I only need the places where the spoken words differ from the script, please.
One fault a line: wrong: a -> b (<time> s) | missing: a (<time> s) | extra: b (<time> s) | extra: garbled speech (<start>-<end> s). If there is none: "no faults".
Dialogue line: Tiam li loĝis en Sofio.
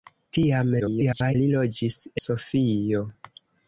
extra: garbled speech (0.8-1.4 s)
missing: en (2.0 s)